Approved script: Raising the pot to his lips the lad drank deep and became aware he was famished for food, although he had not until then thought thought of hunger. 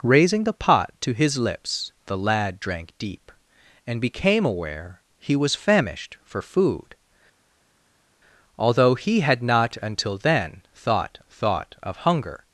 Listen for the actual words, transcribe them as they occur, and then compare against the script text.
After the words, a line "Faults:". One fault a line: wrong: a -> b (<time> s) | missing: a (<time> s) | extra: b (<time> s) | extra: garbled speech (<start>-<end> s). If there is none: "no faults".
Raising the pot to his lips the lad drank deep and became aware he was famished for food, although he had not until then thought thought of hunger.
Faults:
no faults